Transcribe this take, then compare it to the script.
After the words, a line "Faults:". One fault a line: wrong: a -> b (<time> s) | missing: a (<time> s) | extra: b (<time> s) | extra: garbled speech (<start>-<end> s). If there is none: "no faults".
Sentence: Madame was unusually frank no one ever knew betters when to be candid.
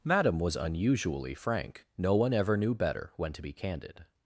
Madame was unusually frank no one ever knew better when to be candid.
Faults:
wrong: betters -> better (2.7 s)